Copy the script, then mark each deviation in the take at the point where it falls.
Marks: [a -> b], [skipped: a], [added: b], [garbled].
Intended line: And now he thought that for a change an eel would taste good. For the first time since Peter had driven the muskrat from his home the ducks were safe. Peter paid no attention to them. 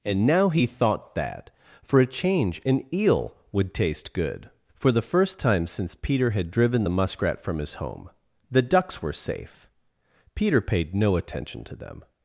And now he thought that for a change an eel would taste good. For the first time since Peter had driven the muskrat from his home the ducks were safe. Peter paid no attention to them.